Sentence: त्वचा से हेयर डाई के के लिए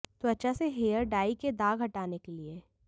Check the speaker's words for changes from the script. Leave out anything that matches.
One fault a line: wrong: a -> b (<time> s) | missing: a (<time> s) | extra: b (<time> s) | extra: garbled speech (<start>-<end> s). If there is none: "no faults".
extra: दाग हटाने (1.5 s)